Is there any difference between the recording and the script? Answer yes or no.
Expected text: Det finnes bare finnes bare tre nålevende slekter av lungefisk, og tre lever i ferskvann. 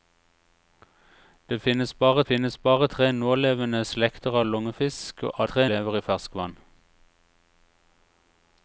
no